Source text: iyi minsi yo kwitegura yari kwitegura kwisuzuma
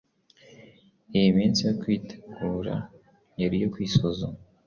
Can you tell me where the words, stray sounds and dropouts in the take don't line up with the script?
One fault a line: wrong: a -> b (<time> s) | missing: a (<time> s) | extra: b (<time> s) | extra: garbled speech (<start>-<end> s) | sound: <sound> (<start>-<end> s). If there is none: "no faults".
wrong: kwitegura -> iyo (3.6 s)